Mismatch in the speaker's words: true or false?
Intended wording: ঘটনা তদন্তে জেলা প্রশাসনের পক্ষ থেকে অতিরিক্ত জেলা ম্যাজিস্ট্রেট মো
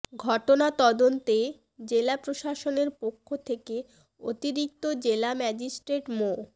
false